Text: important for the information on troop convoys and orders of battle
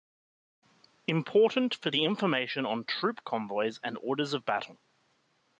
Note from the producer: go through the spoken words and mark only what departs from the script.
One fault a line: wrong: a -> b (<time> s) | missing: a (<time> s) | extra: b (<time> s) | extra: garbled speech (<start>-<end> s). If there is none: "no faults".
no faults